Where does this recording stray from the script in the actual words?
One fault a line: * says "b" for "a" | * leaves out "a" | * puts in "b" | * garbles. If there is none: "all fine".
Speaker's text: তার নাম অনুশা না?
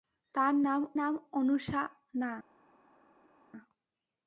* puts in "নাম"